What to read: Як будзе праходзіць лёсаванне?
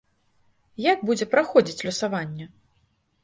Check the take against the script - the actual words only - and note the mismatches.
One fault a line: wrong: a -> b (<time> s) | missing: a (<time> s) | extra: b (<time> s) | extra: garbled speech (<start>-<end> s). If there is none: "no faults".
no faults